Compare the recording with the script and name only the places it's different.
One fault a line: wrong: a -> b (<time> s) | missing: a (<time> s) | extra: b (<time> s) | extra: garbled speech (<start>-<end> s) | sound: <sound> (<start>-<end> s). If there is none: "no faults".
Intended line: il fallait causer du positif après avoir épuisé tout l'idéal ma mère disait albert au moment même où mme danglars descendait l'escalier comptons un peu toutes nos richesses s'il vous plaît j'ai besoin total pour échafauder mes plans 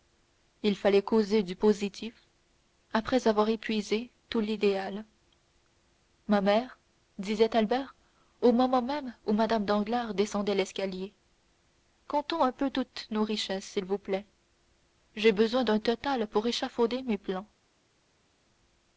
extra: d'un (15.7 s)